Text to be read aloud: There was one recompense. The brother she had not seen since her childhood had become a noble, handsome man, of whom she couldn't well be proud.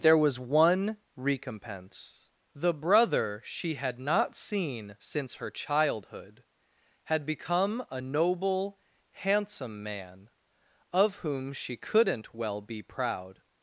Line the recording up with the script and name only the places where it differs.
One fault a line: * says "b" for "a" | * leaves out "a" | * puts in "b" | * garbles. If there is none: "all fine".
all fine